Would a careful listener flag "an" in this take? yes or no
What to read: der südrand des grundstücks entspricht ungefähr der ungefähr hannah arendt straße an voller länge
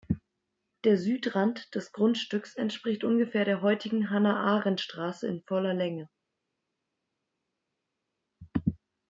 yes